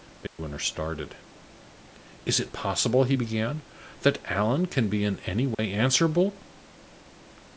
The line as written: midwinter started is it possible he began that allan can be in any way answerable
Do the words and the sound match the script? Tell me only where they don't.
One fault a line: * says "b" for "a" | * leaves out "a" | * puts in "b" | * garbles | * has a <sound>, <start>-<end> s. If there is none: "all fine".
* has a dropout, 0.3-0.4 s
* has a dropout, 5.5-5.6 s